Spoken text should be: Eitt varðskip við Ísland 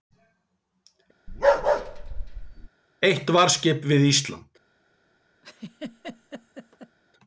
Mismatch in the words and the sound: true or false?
true